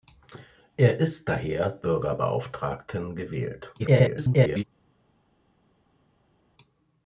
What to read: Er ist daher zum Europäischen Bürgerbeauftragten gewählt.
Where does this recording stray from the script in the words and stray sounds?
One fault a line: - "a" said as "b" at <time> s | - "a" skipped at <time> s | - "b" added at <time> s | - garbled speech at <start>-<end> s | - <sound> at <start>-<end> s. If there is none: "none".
- "zum Europäischen" skipped at 1.8 s
- garbled speech at 3.8-4.6 s